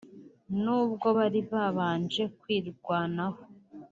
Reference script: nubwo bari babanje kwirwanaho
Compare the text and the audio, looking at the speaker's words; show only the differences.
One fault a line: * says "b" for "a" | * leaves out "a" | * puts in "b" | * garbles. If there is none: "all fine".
all fine